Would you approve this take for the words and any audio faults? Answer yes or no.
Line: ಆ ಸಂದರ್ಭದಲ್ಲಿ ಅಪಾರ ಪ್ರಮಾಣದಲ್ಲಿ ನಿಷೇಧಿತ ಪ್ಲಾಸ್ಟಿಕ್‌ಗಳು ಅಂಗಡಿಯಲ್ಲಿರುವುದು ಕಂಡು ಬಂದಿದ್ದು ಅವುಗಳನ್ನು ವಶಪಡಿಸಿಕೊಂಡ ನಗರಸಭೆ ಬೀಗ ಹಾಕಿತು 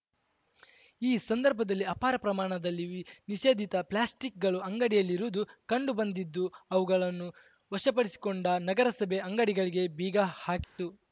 no